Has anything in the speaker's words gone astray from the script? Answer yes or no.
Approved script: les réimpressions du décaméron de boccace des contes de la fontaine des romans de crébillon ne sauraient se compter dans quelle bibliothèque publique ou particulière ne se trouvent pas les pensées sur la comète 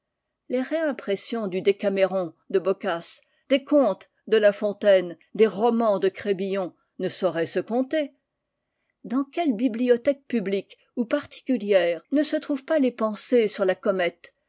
no